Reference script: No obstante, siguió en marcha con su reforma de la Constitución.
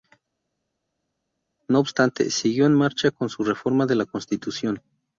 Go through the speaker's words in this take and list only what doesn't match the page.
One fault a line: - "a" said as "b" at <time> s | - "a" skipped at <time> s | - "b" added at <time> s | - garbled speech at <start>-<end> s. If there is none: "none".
none